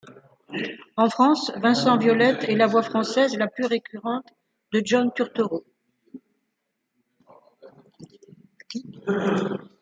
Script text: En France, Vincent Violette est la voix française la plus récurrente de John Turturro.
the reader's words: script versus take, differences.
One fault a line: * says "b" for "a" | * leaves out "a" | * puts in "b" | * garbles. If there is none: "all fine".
all fine